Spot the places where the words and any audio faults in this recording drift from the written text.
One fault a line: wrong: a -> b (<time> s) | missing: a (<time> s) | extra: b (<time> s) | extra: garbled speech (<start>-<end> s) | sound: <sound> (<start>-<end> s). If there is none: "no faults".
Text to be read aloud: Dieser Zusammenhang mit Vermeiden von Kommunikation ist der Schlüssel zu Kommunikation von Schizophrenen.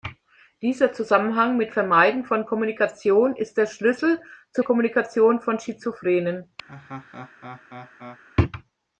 sound: laugh (6.7-8.2 s)